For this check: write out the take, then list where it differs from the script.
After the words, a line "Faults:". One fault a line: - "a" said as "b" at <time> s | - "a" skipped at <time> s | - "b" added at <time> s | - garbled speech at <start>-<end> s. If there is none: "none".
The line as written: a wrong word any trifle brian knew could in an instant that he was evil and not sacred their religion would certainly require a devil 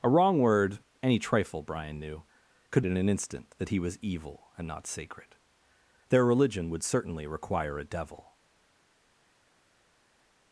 a wrong word any trifle brian knew could in an instant that he was evil and not sacred their religion would certainly require a devil
Faults:
none